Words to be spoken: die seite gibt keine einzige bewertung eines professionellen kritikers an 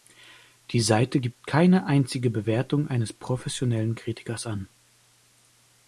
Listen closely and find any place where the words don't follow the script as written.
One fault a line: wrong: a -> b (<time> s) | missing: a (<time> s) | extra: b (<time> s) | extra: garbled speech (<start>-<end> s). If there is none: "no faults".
no faults